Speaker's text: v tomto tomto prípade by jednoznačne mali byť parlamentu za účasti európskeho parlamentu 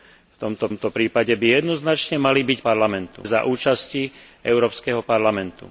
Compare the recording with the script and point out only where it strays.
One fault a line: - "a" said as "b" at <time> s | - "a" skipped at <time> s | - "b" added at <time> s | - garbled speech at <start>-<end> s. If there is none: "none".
none